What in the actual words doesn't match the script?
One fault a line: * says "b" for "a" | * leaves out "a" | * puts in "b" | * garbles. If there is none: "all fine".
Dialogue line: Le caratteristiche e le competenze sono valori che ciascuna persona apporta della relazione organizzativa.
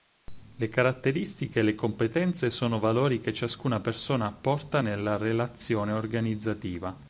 * says "nella" for "della"